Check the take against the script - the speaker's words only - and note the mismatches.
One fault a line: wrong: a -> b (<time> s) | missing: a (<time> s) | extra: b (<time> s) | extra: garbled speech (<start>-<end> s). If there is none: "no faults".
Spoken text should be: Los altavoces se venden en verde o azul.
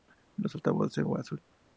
missing: venden en verde (1.0 s)